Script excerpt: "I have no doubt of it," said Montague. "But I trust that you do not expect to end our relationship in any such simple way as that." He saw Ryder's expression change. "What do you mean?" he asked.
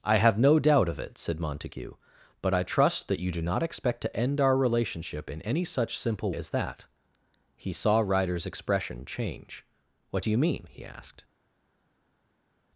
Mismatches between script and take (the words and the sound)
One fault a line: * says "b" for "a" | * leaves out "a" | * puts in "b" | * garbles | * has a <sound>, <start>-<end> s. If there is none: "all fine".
* leaves out "way"